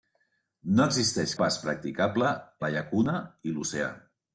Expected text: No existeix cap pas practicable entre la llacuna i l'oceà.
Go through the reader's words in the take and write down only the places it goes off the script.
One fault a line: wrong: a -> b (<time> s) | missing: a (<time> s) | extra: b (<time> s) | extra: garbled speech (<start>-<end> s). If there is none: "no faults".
missing: cap (1.4 s)
missing: entre (2.3 s)